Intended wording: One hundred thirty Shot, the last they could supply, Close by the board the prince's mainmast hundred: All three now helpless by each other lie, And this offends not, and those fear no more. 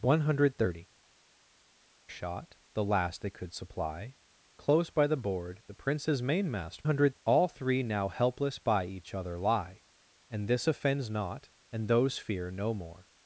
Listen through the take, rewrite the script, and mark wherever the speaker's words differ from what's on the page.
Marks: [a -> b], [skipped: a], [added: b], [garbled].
One hundred thirty Shot, the last they could supply, Close by the board the prince's mainmast hundred: All three now helpless by each other lie, And this offends not, and those fear no more.